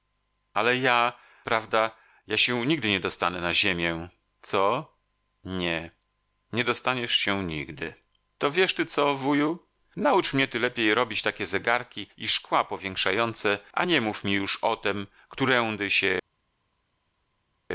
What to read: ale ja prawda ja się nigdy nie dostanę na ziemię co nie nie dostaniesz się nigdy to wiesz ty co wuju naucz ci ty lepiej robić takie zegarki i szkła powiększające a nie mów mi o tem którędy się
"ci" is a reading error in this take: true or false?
true